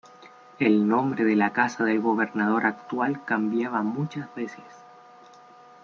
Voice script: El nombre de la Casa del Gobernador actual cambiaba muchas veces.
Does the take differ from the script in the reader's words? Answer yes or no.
no